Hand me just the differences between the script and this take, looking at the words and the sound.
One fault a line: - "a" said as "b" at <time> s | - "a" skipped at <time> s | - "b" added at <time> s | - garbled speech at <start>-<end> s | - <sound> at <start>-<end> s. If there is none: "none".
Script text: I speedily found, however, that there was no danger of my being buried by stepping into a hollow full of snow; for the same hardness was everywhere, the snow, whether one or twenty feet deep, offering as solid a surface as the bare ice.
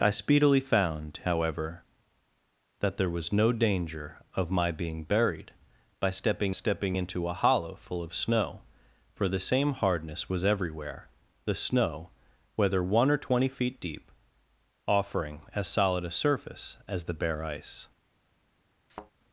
- "stepping" added at 6.5 s
- thud at 18.9-19.1 s